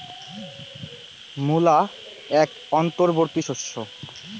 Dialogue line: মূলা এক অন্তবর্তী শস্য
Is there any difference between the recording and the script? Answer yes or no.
no